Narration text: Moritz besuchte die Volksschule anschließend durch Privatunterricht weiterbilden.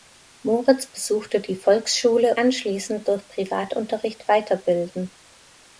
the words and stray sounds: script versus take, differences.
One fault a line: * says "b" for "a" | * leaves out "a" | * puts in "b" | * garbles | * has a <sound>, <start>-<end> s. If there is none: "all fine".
all fine